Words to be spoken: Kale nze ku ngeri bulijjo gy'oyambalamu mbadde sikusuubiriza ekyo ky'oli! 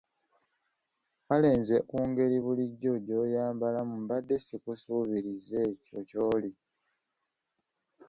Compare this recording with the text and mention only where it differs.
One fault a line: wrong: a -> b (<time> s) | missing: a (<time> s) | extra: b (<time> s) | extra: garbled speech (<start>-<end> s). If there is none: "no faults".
no faults